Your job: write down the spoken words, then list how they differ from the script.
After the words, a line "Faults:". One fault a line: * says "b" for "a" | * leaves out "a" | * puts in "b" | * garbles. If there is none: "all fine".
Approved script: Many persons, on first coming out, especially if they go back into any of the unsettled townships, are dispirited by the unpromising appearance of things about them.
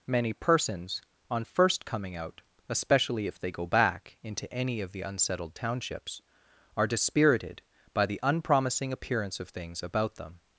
Many persons, on first coming out, especially if they go back into any of the unsettled townships, are dispirited by the unpromising appearance of things about them.
Faults:
all fine